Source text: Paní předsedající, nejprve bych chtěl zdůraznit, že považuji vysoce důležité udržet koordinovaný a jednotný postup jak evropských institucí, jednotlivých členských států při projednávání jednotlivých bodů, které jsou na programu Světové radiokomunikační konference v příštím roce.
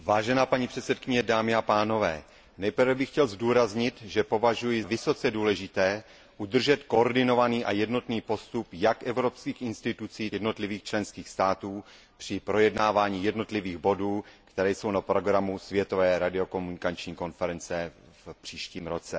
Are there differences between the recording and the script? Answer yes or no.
no